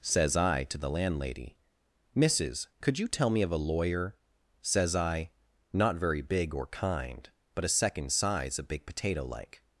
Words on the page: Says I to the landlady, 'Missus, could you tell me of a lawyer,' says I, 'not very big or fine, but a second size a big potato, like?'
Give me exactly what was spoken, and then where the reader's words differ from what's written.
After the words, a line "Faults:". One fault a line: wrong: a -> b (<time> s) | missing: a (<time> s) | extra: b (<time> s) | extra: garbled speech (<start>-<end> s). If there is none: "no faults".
Says I to the landlady, 'Missus, could you tell me of a lawyer,' says I, 'not very big or kind, but a second size a big potato, like?'
Faults:
wrong: fine -> kind (6.7 s)